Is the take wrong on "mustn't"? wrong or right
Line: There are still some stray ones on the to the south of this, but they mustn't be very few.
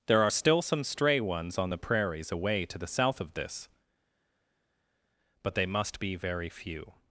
wrong